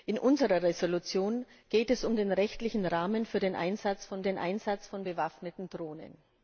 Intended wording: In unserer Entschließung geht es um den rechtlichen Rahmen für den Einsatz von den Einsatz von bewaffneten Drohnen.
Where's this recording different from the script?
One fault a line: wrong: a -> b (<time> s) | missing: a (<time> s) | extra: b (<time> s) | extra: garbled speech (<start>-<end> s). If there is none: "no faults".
no faults